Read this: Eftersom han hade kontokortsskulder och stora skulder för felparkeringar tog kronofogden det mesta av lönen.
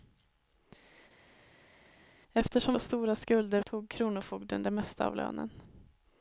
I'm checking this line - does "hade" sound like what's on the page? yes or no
no